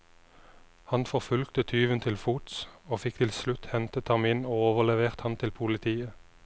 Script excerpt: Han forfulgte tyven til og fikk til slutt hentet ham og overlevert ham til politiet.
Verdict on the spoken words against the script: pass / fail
fail